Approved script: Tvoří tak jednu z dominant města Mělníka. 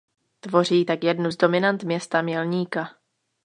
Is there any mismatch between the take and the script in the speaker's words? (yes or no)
no